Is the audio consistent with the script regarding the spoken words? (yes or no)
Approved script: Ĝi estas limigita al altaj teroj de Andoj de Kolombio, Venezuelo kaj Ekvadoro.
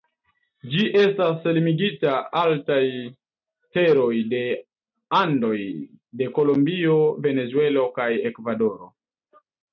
no